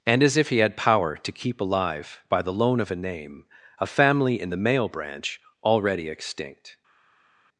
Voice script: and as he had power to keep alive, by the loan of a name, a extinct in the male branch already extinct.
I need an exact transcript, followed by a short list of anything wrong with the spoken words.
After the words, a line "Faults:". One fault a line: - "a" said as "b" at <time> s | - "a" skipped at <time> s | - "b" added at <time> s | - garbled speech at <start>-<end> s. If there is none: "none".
and as if he had power to keep alive, by the loan of a name, a family in the male branch already extinct.
Faults:
- "if" added at 0.4 s
- "extinct" said as "family" at 3.9 s